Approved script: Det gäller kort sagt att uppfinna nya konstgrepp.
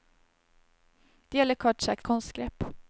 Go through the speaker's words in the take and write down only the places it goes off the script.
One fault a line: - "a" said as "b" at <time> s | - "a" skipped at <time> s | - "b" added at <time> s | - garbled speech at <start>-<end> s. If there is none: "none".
- "att uppfinna nya" skipped at 2.0 s